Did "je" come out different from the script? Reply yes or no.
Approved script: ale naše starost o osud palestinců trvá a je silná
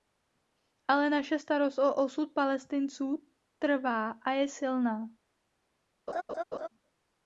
no